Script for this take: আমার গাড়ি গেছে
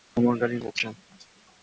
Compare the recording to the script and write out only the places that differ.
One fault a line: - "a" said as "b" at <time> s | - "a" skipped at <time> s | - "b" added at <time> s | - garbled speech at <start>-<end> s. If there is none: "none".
none